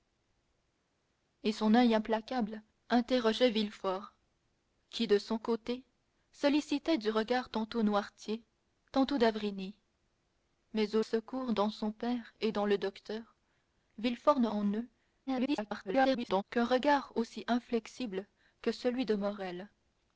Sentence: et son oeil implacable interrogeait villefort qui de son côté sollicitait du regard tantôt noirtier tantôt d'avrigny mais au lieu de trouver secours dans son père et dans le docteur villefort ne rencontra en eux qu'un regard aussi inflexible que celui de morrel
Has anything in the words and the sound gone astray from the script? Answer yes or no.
yes